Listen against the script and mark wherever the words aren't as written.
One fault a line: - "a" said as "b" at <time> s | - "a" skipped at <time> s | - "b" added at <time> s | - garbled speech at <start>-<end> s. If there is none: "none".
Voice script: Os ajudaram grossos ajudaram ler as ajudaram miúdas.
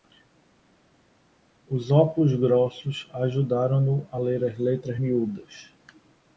- "ajudaram" said as "óculos" at 1.9 s
- "no a" added at 3.8 s
- "ajudaram" said as "letras" at 4.6 s